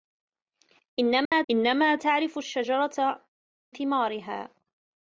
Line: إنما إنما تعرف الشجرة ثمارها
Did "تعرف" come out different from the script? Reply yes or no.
no